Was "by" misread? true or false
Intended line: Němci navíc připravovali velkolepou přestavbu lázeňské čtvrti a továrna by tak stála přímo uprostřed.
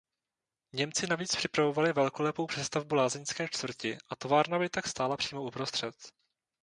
false